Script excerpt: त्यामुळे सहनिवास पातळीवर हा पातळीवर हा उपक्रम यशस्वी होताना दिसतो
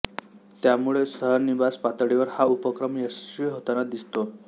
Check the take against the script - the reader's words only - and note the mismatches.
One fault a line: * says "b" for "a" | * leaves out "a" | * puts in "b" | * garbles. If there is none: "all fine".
* leaves out "पातळीवर हा"